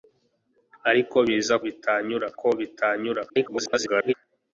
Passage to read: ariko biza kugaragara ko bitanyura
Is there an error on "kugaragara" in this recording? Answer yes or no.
yes